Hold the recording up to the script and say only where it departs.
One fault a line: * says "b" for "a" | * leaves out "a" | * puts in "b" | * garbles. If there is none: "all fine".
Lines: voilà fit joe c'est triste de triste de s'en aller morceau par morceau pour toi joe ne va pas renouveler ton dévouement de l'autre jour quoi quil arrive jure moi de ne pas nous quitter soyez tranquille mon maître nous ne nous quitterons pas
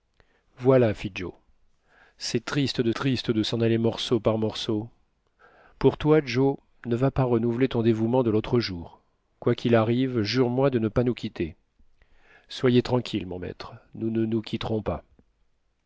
all fine